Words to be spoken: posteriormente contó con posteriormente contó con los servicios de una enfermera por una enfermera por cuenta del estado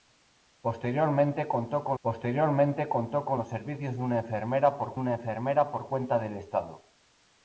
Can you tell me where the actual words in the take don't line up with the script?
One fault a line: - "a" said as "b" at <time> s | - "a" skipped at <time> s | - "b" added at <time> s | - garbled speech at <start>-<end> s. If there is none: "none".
none